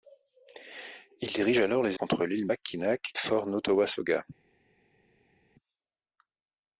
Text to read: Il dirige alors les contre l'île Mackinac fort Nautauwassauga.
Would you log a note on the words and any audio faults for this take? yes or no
no